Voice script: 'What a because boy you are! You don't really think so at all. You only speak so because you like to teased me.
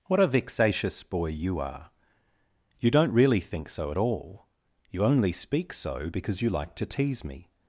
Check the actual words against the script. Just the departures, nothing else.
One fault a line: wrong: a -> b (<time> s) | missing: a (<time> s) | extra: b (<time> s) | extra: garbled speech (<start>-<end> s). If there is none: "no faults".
wrong: because -> vexatious (0.3 s)
wrong: teased -> tease (6.9 s)